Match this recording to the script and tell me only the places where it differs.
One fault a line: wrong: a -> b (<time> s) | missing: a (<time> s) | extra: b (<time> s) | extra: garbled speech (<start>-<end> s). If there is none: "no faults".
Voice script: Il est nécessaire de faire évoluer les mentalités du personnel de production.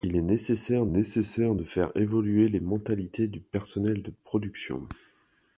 extra: nécessaire (0.9 s)